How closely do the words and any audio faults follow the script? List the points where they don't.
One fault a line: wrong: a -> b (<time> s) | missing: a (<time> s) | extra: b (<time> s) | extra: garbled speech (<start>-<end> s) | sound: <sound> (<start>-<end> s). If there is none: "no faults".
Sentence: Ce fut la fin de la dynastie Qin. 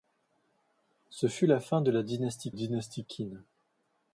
extra: dynastie (2.5 s)